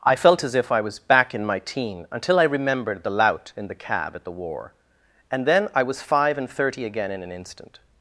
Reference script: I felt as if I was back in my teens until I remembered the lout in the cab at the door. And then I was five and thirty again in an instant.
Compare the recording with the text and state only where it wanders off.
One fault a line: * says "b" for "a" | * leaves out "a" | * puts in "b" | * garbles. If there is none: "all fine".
* says "teen" for "teens"
* says "war" for "door"